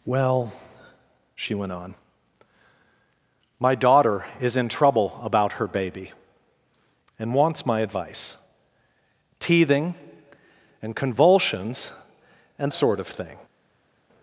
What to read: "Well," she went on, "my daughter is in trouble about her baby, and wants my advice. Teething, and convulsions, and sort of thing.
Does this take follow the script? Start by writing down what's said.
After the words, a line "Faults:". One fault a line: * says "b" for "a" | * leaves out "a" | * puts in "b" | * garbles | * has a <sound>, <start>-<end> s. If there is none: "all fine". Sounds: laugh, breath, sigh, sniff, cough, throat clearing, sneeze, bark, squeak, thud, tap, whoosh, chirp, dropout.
"Well," she went on, "my daughter is in trouble about her baby, and wants my advice. Teething, and convulsions, and sort of thing.
Faults:
all fine